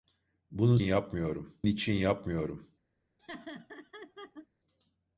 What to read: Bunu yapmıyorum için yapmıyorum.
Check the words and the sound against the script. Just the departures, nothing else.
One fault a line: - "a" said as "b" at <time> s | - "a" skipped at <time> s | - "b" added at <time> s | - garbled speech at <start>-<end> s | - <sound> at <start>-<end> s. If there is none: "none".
- laugh at 3.2-4.5 s